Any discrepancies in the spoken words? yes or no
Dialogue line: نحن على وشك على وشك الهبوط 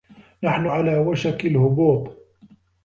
yes